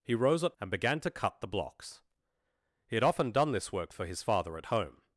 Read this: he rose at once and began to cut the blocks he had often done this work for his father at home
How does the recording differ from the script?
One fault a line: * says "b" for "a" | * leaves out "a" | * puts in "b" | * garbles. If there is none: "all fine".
* leaves out "once"